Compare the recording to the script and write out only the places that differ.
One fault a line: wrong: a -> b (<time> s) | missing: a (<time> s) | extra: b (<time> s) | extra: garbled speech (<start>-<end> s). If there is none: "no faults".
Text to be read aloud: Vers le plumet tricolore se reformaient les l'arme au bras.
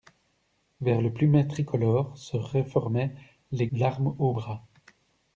no faults